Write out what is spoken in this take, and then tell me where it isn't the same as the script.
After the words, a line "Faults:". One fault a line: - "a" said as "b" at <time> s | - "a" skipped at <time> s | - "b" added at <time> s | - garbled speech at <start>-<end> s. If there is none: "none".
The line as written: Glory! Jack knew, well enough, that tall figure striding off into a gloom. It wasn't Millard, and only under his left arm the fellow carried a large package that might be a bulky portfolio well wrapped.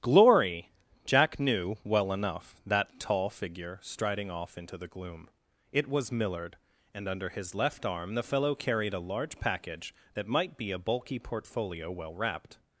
Glory! Jack knew, well enough, that tall figure striding off into the gloom. It was Millard, and under his left arm the fellow carried a large package that might be a bulky portfolio well wrapped.
Faults:
- "a" said as "the" at 4.8 s
- "wasn't" said as "was" at 5.9 s
- "only" skipped at 7.1 s